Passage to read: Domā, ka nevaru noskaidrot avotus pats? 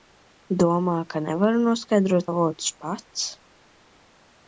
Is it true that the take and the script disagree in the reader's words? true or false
false